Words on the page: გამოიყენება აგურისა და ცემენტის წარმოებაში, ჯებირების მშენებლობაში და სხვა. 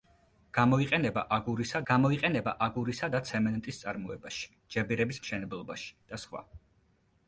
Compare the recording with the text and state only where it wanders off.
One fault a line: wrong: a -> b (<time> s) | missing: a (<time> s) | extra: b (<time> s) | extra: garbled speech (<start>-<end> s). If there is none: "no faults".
extra: გამოიყენება აგურისა (1.9 s)